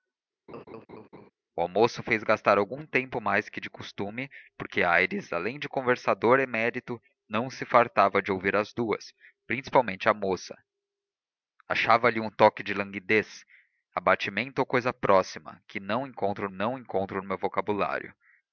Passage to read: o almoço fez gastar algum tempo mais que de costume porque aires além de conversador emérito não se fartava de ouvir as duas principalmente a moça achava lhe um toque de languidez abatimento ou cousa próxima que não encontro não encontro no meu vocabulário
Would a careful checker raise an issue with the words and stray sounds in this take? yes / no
yes